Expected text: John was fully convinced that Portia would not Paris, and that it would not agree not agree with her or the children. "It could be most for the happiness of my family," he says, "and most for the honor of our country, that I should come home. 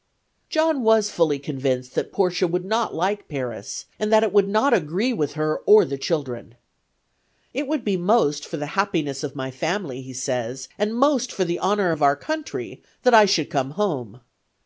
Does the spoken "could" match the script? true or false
false